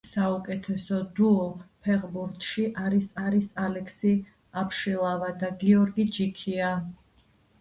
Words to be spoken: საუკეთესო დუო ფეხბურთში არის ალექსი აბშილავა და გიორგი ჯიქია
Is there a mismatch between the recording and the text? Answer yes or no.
yes